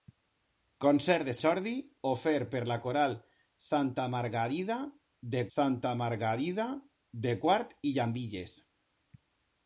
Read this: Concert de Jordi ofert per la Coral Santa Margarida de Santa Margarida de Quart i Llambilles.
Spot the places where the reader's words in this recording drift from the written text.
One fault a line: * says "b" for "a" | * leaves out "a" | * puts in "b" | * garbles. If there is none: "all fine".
all fine